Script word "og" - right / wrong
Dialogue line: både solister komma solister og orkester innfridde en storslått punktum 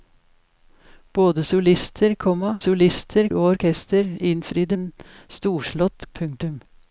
right